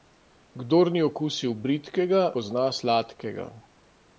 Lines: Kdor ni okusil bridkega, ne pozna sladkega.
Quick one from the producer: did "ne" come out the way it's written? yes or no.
no